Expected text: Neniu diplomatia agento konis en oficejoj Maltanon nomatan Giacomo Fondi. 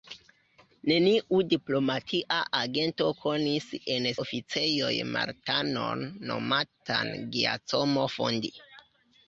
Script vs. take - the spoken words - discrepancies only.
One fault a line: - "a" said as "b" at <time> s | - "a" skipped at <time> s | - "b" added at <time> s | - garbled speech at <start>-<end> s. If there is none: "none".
none